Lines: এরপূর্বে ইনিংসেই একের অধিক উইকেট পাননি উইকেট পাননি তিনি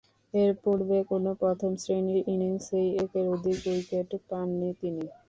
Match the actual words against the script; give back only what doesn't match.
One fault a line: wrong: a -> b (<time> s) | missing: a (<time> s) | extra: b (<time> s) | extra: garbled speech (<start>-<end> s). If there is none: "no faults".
extra: কোন প্রথম শ্রেণীর (1.1 s)
missing: উইকেট পাননি (4.7 s)